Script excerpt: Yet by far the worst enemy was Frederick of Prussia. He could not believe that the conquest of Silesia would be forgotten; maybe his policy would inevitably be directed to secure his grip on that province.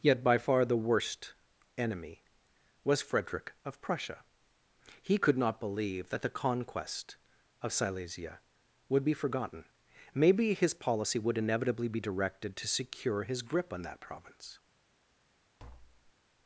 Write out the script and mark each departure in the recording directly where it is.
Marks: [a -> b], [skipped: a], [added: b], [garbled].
Yet by far the worst enemy was Frederick of Prussia. He could not believe that the conquest of Silesia would be forgotten; maybe his policy would inevitably be directed to secure his grip on that province.